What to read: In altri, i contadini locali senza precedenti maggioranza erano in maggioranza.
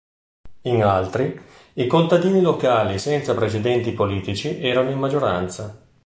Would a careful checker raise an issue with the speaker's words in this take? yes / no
yes